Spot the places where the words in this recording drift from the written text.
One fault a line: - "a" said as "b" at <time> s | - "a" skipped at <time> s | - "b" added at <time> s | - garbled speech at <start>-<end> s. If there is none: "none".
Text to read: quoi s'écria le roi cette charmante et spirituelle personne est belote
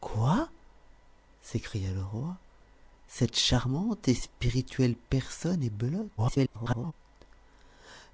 - garbled speech at 6.2-6.9 s